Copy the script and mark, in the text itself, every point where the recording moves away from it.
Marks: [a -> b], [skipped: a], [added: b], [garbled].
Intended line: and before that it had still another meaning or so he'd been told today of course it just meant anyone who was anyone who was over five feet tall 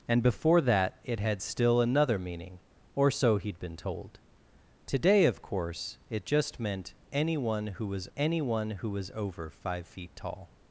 and before that it had still another meaning or so he'd been told today of course it just meant anyone who was anyone who was over five feet tall